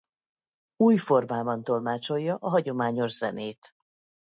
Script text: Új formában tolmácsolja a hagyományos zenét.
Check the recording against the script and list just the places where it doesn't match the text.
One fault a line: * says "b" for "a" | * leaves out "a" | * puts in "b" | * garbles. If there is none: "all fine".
all fine